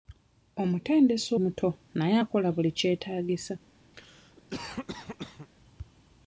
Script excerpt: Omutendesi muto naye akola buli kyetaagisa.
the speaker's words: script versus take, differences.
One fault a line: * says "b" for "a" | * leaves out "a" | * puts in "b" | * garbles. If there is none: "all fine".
all fine